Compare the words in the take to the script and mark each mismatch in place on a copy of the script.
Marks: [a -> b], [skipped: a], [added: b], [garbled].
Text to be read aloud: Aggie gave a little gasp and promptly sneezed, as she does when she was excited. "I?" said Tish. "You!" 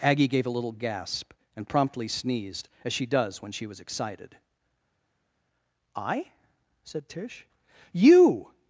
Aggie gave a little gasp and promptly sneezed, as she does when she was excited. "I?" said Tish. "You!"